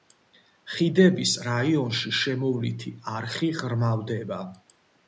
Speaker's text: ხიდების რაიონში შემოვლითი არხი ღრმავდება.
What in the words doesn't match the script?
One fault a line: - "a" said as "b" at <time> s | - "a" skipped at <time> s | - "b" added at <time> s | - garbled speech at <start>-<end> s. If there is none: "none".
none